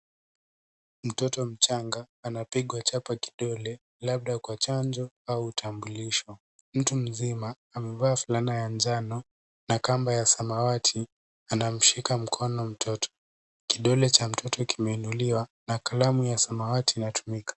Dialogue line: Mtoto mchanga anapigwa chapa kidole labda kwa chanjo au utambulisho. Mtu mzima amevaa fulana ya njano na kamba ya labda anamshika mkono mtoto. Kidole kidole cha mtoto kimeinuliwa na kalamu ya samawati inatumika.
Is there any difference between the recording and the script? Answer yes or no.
yes